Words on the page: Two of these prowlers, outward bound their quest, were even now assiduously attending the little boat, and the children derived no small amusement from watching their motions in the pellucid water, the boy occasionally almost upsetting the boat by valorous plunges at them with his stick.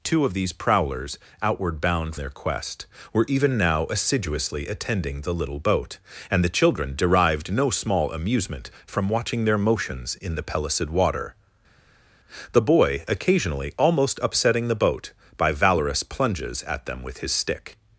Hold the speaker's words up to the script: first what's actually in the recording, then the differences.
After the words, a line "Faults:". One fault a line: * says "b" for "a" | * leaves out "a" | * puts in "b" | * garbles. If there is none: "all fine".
Two of these prowlers, outward bound their quest, were even now assiduously attending the little boat, and the children derived no small amusement from watching their motions in the pellucid water, the boy occasionally almost upsetting the boat by valorous plunges at them with his stick.
Faults:
all fine